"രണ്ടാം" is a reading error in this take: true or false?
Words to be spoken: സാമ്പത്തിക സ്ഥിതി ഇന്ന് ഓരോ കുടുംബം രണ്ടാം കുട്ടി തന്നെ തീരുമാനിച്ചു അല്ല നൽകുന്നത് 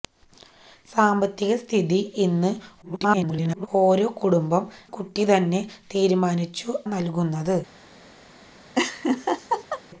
true